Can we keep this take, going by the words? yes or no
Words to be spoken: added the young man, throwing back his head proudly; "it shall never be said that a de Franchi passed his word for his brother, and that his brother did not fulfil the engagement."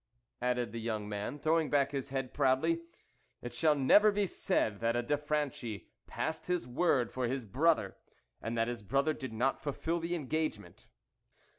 yes